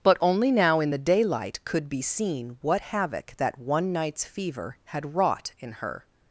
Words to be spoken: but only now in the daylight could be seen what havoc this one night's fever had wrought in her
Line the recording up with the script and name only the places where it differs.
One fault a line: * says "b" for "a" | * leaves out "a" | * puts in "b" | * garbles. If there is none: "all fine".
* says "that" for "this"